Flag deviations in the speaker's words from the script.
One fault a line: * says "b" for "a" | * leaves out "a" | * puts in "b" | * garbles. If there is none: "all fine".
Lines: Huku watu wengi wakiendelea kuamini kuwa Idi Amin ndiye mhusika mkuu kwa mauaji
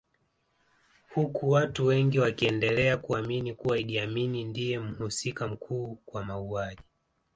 all fine